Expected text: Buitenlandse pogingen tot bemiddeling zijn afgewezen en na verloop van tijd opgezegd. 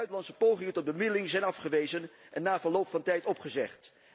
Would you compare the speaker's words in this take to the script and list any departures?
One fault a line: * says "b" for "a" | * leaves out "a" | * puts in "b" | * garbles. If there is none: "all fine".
all fine